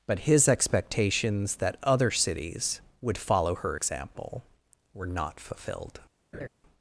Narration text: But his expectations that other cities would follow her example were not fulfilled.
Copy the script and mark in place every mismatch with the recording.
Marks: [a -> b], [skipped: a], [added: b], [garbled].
But his expectations that other cities would follow her example were not fulfilled.